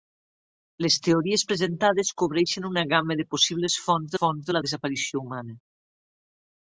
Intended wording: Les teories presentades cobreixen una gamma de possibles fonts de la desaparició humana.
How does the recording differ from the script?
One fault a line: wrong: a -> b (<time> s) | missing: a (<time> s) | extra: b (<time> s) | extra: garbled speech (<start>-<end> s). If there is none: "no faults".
extra: fonts (4.2 s)